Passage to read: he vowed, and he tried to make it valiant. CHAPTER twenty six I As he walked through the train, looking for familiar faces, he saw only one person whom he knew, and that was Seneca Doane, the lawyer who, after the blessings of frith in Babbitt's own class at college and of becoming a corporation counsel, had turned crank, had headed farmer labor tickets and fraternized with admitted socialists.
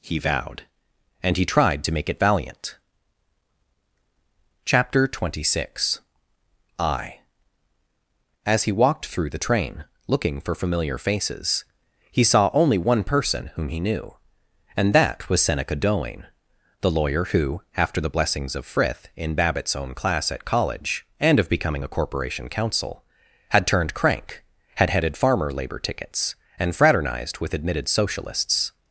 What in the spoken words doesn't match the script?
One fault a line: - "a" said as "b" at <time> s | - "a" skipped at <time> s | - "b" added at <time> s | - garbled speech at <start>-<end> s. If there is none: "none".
none